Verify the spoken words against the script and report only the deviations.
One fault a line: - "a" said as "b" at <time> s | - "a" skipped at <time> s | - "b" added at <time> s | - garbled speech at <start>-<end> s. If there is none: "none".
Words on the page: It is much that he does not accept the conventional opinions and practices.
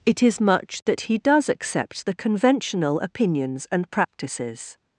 - "not" skipped at 1.5 s